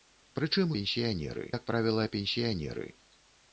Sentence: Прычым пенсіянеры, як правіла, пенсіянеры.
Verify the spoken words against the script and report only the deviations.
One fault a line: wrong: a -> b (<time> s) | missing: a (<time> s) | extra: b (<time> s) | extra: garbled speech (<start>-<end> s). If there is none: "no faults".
no faults